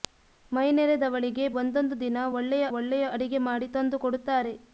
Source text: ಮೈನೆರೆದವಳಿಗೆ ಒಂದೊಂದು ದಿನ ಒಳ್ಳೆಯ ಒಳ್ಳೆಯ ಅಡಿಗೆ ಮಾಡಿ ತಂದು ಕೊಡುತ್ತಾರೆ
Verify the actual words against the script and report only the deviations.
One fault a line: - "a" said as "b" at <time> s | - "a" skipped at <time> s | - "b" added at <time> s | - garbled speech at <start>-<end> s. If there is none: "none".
none